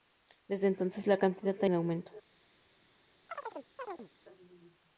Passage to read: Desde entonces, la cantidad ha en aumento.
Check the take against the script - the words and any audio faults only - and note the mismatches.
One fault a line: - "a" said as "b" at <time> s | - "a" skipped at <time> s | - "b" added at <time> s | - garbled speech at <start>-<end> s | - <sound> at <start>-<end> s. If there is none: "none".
- chirp at 3.3-4.1 s